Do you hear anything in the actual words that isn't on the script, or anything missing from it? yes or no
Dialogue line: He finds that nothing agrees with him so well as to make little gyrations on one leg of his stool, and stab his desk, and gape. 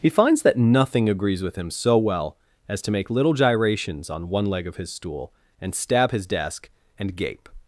no